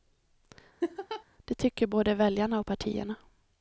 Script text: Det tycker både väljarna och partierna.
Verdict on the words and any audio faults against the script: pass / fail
fail